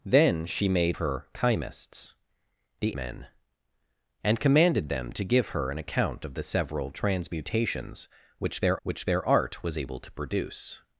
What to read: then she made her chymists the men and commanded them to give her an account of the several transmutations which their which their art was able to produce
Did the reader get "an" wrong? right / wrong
right